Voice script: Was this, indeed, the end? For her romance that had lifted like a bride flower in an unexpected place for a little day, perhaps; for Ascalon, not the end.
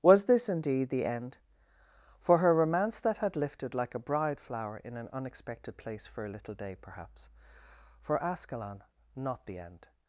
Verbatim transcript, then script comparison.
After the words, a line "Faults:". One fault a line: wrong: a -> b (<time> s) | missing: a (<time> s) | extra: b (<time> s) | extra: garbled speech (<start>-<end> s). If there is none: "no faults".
Was this, indeed, the end? For her romance that had lifted like a bride flower in an unexpected place for a little day, perhaps; for Ascalon, not the end.
Faults:
no faults